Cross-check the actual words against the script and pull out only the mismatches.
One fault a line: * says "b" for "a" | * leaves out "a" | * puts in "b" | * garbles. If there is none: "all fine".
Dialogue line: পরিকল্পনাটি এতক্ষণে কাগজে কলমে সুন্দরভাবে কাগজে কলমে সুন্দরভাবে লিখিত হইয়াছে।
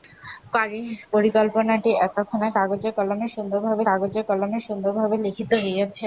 all fine